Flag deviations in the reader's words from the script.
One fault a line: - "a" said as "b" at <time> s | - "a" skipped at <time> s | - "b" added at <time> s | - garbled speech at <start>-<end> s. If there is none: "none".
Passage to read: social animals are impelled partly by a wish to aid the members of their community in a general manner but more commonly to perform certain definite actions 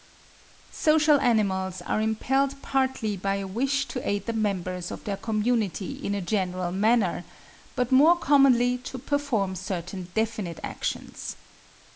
none